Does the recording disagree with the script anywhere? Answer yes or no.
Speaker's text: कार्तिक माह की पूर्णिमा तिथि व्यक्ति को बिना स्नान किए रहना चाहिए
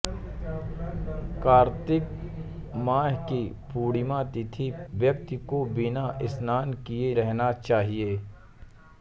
no